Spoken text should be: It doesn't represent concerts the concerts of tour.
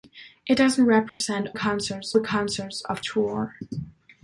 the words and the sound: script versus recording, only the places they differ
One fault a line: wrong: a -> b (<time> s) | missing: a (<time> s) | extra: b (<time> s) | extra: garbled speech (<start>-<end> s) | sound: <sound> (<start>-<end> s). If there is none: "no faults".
sound: dropout (1.1-1.2 s)